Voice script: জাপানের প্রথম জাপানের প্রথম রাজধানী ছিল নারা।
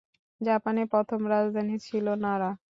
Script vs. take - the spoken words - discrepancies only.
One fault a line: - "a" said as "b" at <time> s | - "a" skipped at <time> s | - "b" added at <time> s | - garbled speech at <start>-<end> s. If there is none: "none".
- "জাপানের প্রথম" skipped at 1.2 s